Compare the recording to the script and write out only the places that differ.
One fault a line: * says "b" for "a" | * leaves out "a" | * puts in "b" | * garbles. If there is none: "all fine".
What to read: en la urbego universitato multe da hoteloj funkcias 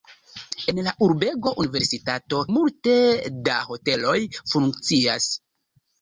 all fine